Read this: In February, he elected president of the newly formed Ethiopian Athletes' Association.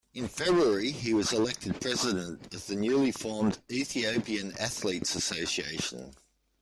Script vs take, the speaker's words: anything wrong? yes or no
yes